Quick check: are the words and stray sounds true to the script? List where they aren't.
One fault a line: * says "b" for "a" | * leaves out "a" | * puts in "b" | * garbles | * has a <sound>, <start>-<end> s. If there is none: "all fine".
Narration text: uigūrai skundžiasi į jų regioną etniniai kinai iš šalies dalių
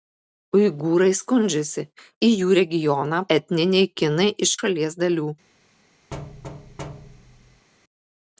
* has a thud, 6.1-7.7 s